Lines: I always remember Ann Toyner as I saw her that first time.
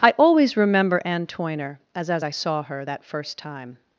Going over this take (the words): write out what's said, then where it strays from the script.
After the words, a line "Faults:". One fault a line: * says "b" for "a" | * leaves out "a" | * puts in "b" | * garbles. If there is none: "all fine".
I always remember Ann Toyner as as I saw her that first time.
Faults:
* puts in "as"